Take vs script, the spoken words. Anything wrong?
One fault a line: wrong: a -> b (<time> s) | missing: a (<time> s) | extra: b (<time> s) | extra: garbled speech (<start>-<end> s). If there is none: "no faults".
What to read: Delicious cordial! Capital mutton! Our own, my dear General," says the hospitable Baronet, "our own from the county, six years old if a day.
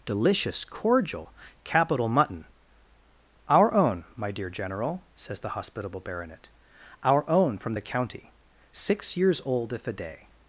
no faults